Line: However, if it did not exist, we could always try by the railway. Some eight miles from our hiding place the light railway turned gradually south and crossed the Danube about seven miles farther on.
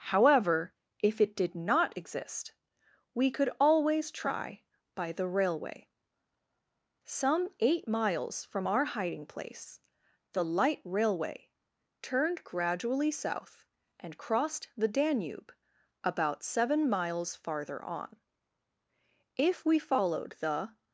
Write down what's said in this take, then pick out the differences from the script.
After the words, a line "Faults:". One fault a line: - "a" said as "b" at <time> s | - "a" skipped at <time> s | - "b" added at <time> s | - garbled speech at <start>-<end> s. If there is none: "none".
However, if it did not exist, we could always try by the railway. Some eight miles from our hiding place the light railway turned gradually south and crossed the Danube about seven miles farther on. If we followed the
Faults:
- "If we followed the" added at 19.4 s